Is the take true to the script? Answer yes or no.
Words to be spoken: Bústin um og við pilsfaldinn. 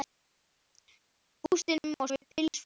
yes